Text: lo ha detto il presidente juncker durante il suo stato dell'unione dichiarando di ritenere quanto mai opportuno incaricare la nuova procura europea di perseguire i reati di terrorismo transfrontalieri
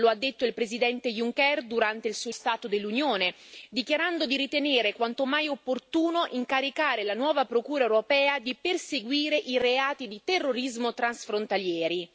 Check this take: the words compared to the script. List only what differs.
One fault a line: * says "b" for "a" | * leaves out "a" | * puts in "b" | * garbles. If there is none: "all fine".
all fine